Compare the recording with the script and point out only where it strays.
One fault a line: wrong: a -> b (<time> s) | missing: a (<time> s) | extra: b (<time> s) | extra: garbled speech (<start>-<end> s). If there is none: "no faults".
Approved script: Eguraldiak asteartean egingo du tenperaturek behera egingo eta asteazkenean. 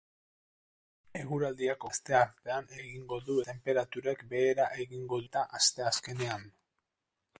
no faults